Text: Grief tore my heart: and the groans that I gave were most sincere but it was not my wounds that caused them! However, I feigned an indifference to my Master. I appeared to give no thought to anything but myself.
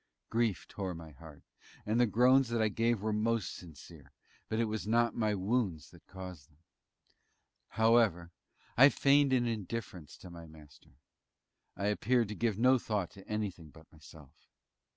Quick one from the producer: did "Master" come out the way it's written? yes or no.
yes